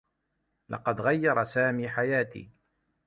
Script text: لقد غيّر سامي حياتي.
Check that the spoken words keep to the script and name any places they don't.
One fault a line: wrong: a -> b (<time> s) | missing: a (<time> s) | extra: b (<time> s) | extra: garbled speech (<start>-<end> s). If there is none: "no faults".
no faults